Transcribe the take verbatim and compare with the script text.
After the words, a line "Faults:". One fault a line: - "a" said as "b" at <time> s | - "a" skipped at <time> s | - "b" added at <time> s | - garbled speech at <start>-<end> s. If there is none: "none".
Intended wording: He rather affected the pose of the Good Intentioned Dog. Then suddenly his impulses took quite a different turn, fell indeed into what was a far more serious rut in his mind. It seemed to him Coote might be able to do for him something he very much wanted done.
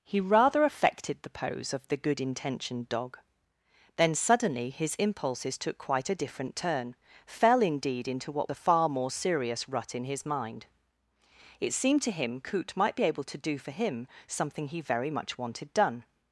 He rather affected the pose of the Good Intentioned Dog. Then suddenly his impulses took quite a different turn, fell indeed into what a far more serious rut in his mind. It seemed to him Coote might be able to do for him something he very much wanted done.
Faults:
- "was" skipped at 8.5 s